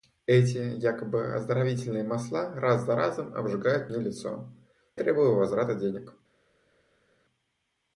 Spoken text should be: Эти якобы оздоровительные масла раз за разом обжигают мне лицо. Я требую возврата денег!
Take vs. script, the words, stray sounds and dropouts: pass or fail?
fail